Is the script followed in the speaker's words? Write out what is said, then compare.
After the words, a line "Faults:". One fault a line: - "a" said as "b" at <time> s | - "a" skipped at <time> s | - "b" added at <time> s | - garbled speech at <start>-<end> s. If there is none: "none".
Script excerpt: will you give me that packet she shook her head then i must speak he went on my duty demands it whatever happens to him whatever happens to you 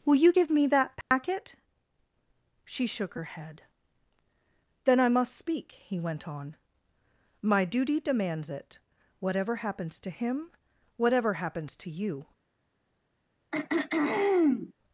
will you give me that packet she shook her head then i must speak he went on my duty demands it whatever happens to him whatever happens to you
Faults:
none